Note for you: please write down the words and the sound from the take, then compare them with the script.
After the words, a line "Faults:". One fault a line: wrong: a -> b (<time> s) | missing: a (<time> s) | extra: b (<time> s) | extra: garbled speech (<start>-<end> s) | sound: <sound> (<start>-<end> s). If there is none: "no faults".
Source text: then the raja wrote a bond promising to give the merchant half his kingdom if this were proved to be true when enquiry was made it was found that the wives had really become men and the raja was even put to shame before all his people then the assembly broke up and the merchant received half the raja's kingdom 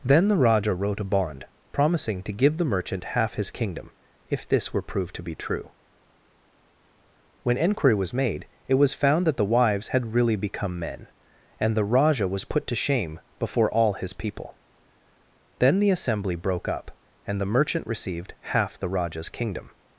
then the raja wrote a bond promising to give the merchant half his kingdom if this were proved to be true when enquiry was made it was found that the wives had really become men and the raja was put to shame before all his people then the assembly broke up and the merchant received half the raja's kingdom
Faults:
missing: even (12.4 s)